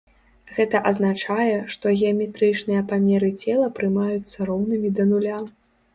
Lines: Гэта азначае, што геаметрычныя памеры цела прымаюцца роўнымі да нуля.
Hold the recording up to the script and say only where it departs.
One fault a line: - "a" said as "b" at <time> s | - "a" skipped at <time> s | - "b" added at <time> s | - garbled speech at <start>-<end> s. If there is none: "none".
none